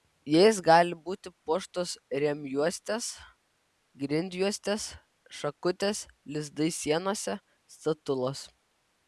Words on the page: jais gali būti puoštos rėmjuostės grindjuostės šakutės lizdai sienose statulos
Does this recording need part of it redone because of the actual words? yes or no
no